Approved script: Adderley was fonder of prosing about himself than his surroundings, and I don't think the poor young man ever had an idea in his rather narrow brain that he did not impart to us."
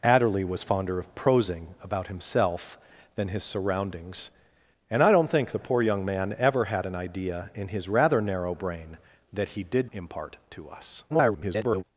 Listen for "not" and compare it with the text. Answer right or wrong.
wrong